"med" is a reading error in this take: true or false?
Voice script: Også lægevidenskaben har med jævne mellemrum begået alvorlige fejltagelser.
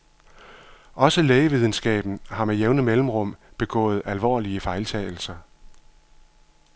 false